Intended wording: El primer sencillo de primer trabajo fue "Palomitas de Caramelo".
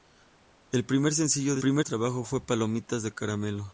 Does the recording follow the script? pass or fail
pass